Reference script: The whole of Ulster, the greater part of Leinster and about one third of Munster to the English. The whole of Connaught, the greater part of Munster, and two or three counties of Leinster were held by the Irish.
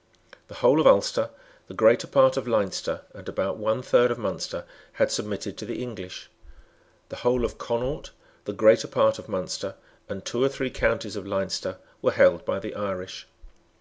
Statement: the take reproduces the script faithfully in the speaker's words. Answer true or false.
false